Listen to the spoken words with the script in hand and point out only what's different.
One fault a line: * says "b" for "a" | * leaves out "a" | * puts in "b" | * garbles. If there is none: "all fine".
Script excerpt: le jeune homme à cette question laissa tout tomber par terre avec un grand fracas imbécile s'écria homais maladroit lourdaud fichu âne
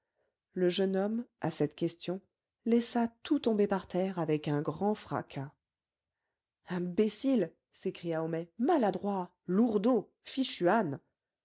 all fine